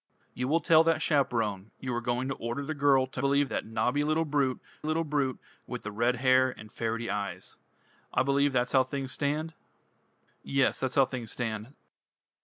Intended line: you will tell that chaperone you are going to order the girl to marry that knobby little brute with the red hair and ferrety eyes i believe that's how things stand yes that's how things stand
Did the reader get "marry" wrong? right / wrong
wrong